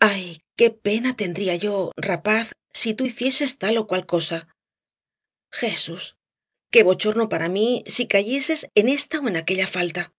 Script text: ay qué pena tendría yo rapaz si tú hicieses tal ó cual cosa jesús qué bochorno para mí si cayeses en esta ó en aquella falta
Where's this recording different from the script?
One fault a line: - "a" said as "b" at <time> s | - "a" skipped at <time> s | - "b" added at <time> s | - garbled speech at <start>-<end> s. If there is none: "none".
none